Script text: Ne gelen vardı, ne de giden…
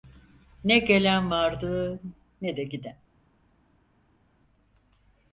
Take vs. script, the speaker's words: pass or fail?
pass